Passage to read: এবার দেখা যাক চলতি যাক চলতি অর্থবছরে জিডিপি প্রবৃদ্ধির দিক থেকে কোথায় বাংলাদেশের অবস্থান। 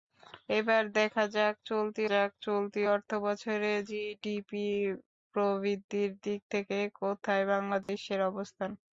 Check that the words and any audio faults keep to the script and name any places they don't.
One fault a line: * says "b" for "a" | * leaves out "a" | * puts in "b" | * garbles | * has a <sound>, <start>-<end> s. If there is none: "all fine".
* has a dropout, 7.8-7.9 s